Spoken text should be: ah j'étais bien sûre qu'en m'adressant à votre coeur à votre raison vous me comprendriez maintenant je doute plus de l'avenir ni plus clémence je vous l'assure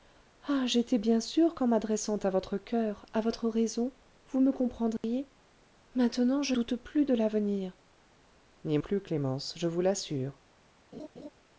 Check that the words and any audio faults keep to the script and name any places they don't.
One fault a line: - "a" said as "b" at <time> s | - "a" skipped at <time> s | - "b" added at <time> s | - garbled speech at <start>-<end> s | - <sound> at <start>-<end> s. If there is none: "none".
- dropout at 5.0-5.0 s
- laugh at 10.9-11.3 s